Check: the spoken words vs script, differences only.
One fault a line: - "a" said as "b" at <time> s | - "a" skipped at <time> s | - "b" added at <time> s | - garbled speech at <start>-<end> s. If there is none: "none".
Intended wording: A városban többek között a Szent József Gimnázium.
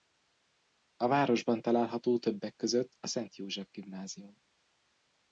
- "található" added at 1.6 s